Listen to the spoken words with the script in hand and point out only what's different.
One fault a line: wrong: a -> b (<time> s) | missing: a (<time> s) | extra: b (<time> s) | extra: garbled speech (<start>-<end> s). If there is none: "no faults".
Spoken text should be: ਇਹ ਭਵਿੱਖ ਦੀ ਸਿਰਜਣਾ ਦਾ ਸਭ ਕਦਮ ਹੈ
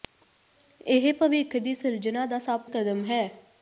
no faults